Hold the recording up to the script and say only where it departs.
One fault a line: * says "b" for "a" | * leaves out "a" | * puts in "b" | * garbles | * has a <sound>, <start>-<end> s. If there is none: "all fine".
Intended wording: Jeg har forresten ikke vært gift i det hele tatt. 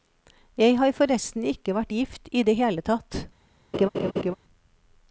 * has a laugh, 3.7-4.3 s